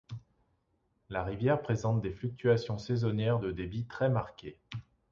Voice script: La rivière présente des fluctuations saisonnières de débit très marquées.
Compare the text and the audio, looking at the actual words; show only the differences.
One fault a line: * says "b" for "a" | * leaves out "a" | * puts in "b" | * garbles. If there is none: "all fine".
all fine